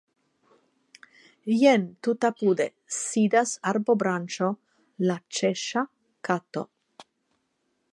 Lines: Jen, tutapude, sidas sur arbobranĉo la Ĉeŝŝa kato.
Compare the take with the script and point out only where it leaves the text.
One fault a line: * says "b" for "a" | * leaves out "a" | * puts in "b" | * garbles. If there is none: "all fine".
* leaves out "sur"